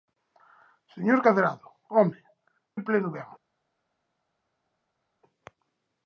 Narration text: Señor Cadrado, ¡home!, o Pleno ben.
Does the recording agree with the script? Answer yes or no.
yes